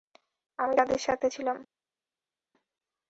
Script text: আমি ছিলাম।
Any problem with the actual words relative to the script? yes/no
yes